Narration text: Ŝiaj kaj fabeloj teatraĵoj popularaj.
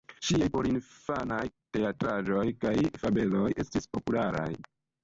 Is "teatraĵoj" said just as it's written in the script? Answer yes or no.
no